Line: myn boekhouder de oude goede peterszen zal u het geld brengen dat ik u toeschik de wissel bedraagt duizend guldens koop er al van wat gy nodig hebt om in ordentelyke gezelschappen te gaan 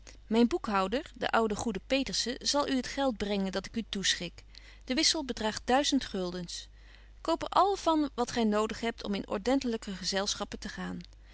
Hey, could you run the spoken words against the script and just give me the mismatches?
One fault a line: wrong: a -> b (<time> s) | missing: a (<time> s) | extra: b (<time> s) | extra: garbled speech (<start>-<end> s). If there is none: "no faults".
no faults